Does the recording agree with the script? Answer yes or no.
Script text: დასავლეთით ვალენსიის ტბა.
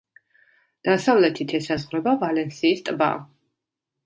no